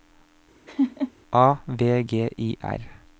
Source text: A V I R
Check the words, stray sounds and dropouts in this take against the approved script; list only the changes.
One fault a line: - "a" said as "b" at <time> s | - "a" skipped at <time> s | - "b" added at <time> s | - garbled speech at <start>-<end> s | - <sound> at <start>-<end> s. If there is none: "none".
- laugh at 0.7-1.1 s
- "G" added at 2.0 s